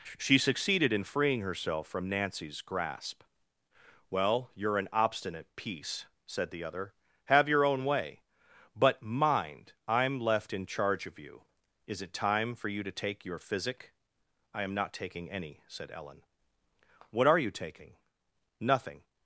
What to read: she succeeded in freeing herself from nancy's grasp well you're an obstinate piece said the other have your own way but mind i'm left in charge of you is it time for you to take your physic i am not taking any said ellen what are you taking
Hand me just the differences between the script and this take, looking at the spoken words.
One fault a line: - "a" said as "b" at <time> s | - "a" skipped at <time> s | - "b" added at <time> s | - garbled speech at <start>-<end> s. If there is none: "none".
- "nothing" added at 18.6 s